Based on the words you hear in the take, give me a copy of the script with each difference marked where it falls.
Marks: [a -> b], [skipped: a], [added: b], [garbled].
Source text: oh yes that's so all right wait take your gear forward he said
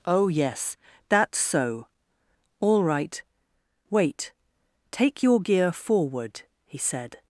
oh yes that's so all right wait take your gear forward he said